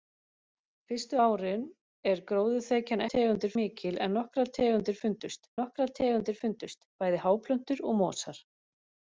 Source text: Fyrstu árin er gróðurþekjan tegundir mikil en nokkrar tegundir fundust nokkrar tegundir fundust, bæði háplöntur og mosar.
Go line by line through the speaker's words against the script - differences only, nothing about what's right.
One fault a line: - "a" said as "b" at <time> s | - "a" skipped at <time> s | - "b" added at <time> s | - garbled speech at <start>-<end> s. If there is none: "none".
none